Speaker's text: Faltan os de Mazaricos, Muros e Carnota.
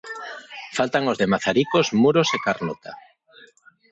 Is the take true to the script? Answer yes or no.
yes